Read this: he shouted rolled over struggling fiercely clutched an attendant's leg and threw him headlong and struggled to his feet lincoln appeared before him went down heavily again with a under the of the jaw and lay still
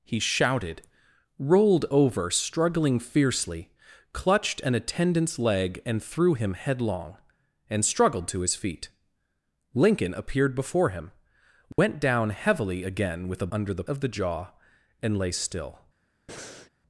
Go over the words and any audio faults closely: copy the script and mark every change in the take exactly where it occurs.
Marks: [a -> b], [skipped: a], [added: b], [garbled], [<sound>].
he shouted rolled over struggling fiercely clutched an attendant's leg and threw him headlong and struggled to his feet lincoln appeared before him went [dropout] down heavily again with a under the of the jaw and lay still [breath]